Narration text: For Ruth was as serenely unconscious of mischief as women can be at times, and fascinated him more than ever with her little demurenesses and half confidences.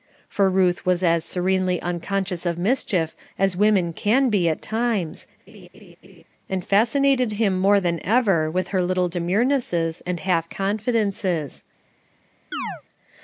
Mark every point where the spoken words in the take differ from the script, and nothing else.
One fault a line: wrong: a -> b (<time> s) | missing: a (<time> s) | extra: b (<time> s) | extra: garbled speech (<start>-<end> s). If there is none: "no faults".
no faults